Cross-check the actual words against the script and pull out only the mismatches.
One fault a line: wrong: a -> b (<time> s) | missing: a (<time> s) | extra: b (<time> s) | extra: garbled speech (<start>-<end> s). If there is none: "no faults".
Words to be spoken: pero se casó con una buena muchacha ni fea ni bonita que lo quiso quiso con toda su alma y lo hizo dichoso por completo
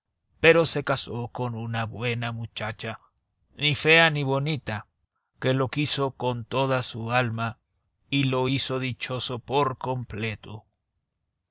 missing: quiso (6.1 s)